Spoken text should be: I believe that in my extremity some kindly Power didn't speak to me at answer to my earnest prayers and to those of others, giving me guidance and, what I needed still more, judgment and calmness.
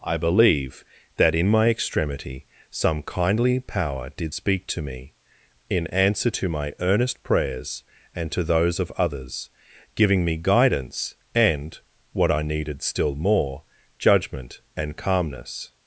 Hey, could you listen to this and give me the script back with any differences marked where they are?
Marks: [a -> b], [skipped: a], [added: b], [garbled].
I believe that in my extremity some kindly Power [didn't -> did] speak to me [at -> in] answer to my earnest prayers and to those of others, giving me guidance and, what I needed still more, judgment and calmness.